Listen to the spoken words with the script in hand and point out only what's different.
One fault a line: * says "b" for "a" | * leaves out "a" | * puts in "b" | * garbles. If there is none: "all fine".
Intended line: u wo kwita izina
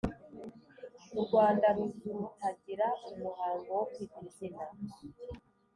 * puts in "rwanda ruzutagira umuhango"